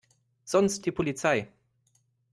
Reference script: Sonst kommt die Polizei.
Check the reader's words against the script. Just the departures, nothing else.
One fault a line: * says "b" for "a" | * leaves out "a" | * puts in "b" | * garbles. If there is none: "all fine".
* leaves out "kommt"